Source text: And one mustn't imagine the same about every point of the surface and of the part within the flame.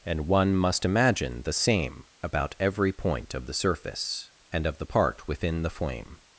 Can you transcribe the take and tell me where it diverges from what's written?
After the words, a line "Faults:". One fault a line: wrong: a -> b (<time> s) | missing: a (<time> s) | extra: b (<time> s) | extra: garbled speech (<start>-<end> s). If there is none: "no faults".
And one must imagine the same about every point of the surface and of the part within the flame.
Faults:
wrong: mustn't -> must (0.6 s)